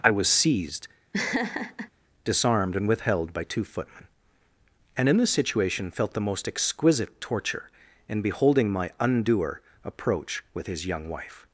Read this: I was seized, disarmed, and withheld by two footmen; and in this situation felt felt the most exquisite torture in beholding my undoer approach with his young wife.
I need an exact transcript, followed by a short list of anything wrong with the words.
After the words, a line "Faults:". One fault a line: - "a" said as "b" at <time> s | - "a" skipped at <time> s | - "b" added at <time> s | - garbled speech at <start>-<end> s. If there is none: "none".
I was seized, disarmed, and withheld by two footmen; and in this situation felt the most exquisite torture in beholding my undoer approach with his young wife.
Faults:
- "felt" skipped at 6.1 s